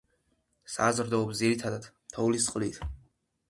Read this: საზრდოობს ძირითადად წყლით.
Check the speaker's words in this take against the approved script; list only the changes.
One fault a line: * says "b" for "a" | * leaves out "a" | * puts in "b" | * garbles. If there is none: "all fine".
* puts in "თოვლის"